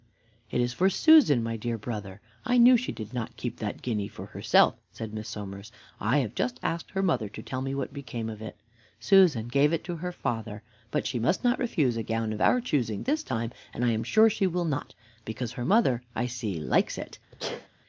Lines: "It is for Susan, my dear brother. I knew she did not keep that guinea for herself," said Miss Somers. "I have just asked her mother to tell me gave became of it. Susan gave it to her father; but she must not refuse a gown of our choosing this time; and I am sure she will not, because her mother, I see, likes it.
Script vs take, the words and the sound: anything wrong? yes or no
yes